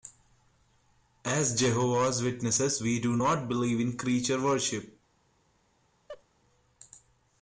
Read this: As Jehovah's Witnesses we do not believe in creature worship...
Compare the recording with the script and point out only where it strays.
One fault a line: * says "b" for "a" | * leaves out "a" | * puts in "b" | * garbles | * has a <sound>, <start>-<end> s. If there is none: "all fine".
* has a laugh, 6.1-6.2 s